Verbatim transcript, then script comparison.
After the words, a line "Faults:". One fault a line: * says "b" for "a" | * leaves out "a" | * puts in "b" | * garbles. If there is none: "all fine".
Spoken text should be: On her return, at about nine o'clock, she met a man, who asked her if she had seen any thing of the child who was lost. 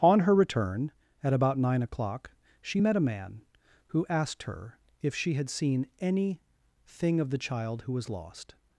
On her return, at about nine o'clock, she met a man, who asked her if she had seen any thing of the child who was lost.
Faults:
all fine